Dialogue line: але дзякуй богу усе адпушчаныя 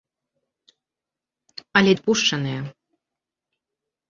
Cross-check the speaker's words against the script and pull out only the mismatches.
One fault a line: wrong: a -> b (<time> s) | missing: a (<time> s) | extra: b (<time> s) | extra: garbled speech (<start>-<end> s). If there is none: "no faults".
missing: дзякуй богу усе (1.9 s)